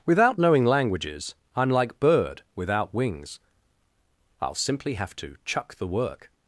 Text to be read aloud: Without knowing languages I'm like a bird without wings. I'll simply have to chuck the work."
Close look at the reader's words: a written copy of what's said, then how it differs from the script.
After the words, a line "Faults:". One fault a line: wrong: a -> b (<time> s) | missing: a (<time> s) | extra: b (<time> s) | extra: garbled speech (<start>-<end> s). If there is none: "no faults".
Without knowing languages I'm like bird without wings. I'll simply have to chuck the work."
Faults:
missing: a (2.0 s)